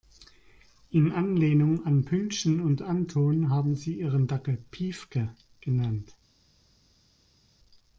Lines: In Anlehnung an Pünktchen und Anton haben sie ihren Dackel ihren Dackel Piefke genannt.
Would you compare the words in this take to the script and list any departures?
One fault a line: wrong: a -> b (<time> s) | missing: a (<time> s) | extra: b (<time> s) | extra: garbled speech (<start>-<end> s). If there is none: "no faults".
missing: ihren Dackel (4.6 s)